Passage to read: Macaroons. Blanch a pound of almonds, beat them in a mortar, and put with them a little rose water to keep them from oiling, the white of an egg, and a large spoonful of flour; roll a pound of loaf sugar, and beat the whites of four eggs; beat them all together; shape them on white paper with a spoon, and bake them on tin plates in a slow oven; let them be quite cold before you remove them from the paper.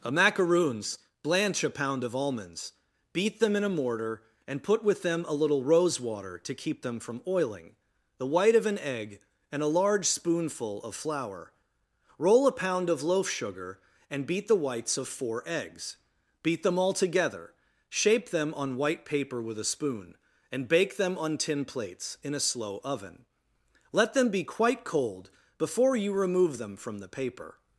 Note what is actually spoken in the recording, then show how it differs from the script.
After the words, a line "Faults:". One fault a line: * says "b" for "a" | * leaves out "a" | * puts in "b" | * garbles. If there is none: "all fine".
a Macaroons. Blanch a pound of almonds, beat them in a mortar, and put with them a little rose water to keep them from oiling, the white of an egg, and a large spoonful of flour; roll a pound of loaf sugar, and beat the whites of four eggs; beat them all together; shape them on white paper with a spoon, and bake them on tin plates in a slow oven; let them be quite cold before you remove them from the paper.
Faults:
* puts in "a"